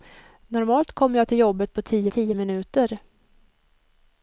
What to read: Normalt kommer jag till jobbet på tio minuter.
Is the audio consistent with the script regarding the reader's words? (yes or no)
no